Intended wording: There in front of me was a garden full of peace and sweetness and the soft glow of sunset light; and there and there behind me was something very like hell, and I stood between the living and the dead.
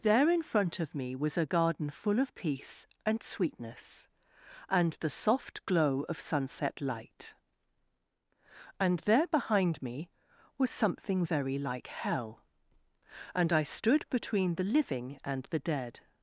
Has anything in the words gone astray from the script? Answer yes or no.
yes